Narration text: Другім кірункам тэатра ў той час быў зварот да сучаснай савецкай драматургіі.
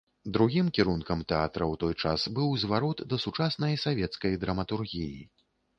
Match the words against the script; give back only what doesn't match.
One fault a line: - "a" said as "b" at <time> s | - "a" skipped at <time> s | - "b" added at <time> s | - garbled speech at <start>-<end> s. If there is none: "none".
none